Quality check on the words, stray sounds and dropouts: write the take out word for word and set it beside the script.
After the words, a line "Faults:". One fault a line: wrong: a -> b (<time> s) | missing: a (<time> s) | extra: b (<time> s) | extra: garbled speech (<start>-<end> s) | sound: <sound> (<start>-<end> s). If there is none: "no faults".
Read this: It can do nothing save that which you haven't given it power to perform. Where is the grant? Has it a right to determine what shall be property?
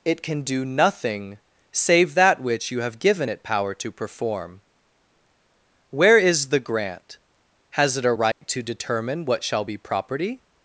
It can do nothing save that which you have given it power to perform. Where is the grant? Has it a right to determine what shall be property?
Faults:
wrong: haven't -> have (2.8 s)
sound: dropout (8.3-8.4 s)